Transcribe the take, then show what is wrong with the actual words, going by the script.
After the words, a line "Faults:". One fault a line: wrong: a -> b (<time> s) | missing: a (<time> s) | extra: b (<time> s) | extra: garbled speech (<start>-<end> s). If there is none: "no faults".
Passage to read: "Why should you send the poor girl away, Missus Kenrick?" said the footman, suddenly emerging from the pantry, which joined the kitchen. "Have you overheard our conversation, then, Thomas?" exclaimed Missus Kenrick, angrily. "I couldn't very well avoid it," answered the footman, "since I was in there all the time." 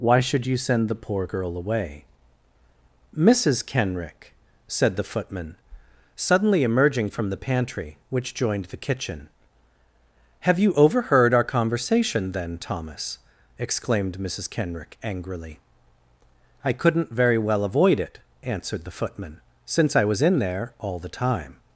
"Why should you send the poor girl away, Missus Kenrick?" said the footman, suddenly emerging from the pantry, which joined the kitchen. "Have you overheard our conversation, then, Thomas?" exclaimed Missus Kenrick, angrily. "I couldn't very well avoid it," answered the footman, "since I was in there all the time."
Faults:
no faults